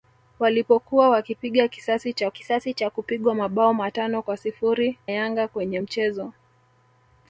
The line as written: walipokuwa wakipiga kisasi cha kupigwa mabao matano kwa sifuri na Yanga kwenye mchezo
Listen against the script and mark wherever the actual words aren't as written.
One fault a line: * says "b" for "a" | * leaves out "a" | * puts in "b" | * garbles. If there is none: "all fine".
* puts in "kisasi cha"
* leaves out "na"